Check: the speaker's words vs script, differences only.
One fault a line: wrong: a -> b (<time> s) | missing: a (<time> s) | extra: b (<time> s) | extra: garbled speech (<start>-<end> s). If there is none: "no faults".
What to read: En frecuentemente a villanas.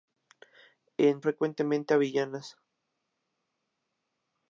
no faults